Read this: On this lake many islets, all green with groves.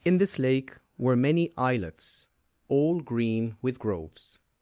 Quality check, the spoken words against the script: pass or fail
fail